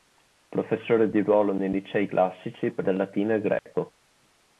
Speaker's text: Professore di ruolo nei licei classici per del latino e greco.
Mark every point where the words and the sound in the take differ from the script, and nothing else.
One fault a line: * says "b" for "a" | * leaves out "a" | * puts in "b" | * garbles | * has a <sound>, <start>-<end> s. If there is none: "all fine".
* has a dropout, 3.6-3.7 s